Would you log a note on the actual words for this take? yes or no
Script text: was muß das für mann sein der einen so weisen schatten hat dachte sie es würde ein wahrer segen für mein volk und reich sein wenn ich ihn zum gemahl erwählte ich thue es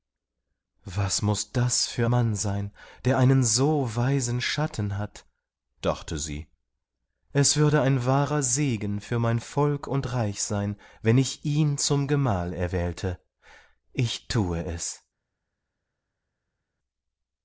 no